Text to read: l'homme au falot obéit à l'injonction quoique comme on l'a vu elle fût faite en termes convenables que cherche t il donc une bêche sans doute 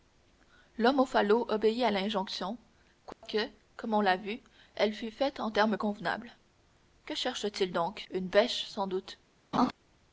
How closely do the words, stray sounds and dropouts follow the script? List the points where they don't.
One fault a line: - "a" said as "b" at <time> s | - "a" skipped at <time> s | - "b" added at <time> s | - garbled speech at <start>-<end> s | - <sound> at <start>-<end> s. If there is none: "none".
- dropout at 3.1-3.2 s
- laugh at 9.5-9.7 s